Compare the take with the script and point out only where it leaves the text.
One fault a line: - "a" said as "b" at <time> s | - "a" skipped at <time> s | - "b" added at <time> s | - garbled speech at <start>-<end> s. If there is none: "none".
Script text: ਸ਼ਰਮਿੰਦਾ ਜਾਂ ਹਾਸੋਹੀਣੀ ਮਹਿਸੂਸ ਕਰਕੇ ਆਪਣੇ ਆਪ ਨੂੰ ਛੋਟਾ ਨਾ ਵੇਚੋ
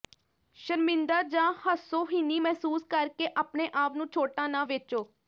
none